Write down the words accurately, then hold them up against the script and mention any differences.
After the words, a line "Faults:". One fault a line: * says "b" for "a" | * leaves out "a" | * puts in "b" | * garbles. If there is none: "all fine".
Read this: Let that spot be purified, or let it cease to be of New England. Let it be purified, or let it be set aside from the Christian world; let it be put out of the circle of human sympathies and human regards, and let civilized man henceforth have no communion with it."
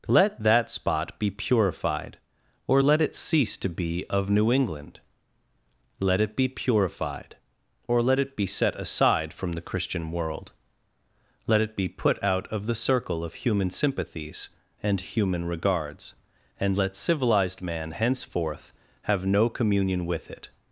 Let that spot be purified, or let it cease to be of New England. Let it be purified, or let it be set aside from the Christian world; let it be put out of the circle of human sympathies and human regards, and let civilized man henceforth have no communion with it."
Faults:
all fine